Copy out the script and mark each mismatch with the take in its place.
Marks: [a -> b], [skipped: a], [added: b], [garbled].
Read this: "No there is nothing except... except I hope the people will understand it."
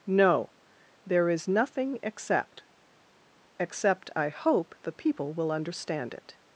"No there is nothing except... except I hope the people will understand it."